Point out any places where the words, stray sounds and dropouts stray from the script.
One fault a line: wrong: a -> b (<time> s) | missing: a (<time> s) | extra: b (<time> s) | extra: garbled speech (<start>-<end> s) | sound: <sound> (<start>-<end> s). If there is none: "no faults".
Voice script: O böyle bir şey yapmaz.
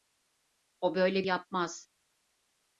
missing: şey (1.3 s)